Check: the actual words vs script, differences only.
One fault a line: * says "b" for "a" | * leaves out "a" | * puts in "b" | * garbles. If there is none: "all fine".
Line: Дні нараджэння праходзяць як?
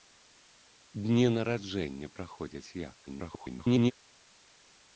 * garbles